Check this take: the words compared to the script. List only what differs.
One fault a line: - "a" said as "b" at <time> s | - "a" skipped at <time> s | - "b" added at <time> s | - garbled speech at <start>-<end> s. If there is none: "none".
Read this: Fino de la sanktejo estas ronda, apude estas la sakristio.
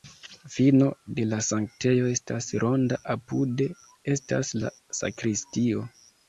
none